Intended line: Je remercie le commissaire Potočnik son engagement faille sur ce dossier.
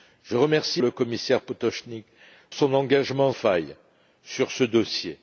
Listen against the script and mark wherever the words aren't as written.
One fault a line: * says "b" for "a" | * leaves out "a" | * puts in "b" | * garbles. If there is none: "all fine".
all fine